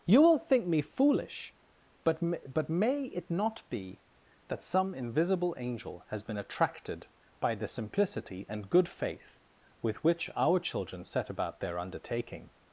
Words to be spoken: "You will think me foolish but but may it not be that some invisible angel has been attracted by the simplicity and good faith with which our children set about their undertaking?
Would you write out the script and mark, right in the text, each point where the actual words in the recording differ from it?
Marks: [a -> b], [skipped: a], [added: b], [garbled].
"You will think me foolish but but may it not be that some invisible angel has been attracted by the simplicity and good faith with which our children set about their undertaking?